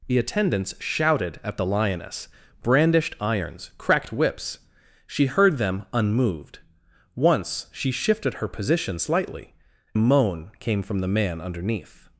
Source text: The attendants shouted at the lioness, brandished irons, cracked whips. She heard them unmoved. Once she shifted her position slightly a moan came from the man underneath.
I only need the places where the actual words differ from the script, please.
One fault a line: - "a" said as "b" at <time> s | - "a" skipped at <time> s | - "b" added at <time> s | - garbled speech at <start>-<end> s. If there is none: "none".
none